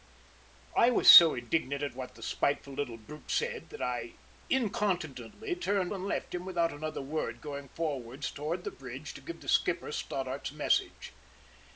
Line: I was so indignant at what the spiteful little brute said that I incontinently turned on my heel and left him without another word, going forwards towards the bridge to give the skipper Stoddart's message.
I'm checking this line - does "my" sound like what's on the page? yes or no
no